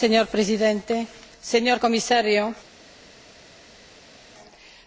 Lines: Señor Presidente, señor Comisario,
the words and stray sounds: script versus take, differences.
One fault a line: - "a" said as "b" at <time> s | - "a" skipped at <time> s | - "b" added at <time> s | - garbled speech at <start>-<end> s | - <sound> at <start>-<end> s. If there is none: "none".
none